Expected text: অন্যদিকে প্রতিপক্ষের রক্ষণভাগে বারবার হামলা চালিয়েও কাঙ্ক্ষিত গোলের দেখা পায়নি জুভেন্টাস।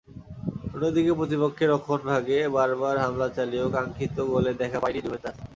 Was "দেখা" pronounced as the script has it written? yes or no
yes